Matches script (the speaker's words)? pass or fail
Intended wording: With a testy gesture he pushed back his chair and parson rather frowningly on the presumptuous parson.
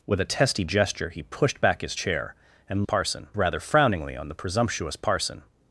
pass